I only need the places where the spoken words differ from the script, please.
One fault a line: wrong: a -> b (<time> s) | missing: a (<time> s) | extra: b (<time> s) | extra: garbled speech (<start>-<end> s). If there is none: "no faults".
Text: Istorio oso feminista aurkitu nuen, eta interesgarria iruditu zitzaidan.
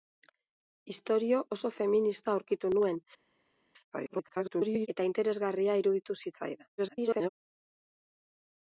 extra: garbled speech (3.9-4.9 s)
extra: garbled speech (6.8-7.3 s)